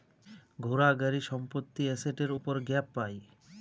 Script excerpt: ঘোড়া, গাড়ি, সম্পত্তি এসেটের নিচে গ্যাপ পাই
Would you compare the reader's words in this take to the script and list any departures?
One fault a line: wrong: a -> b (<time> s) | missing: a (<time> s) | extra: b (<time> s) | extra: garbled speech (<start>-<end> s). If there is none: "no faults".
wrong: নিচে -> উপর (2.4 s)